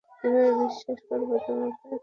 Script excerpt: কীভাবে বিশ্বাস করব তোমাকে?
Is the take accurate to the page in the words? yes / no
yes